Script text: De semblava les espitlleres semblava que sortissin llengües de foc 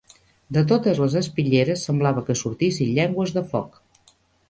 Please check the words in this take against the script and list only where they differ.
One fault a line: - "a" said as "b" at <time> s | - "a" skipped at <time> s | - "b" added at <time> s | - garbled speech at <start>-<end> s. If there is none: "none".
- "semblava" said as "totes" at 0.7 s